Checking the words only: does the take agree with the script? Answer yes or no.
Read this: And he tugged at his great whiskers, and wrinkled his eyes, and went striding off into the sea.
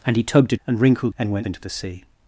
no